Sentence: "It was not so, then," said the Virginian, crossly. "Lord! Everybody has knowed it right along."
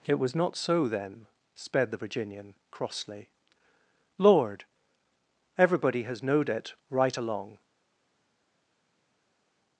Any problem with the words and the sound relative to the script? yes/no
yes